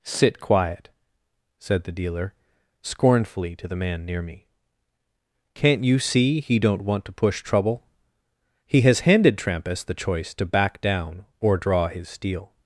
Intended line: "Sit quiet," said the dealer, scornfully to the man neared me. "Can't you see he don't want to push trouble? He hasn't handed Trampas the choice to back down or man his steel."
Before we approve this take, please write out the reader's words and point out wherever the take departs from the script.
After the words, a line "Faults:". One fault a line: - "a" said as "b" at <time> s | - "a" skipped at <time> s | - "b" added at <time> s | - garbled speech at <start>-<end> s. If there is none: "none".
"Sit quiet," said the dealer, scornfully to the man near me. "Can't you see he don't want to push trouble? He has handed Trampas the choice to back down or draw his steel."
Faults:
- "neared" said as "near" at 4.0 s
- "hasn't" said as "has" at 8.8 s
- "man" said as "draw" at 11.6 s